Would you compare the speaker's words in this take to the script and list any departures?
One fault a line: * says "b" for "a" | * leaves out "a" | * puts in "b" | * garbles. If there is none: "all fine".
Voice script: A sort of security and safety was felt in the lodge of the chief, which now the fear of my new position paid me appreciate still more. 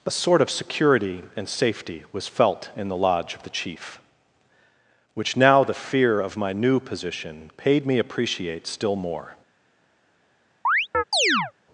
all fine